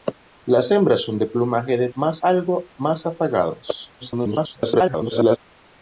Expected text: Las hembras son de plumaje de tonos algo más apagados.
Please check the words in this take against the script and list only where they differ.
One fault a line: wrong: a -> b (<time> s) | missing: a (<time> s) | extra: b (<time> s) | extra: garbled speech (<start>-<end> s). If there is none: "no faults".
wrong: tonos -> más (1.9 s)
extra: garbled speech (4.0-5.4 s)